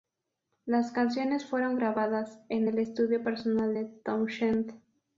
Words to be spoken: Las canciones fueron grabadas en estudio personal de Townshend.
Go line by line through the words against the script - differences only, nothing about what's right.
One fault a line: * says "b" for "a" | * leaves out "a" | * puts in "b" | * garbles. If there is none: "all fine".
* puts in "el"